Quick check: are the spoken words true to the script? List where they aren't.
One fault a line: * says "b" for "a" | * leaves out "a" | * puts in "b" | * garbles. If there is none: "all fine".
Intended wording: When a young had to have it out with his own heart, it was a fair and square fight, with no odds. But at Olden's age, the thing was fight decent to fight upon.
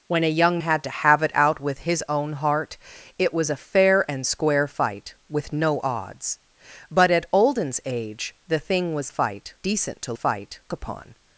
all fine